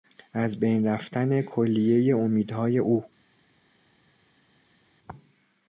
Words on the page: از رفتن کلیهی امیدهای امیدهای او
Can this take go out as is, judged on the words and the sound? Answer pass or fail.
fail